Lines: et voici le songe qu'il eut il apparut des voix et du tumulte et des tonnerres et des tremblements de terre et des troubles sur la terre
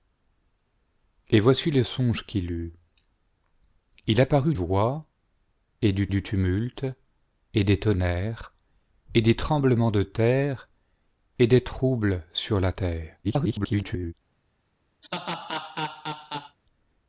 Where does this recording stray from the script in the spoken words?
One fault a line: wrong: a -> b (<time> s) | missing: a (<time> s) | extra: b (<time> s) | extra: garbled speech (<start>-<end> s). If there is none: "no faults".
missing: des (4.5 s)
extra: du (6.1 s)
extra: garbled speech (13.2-14.1 s)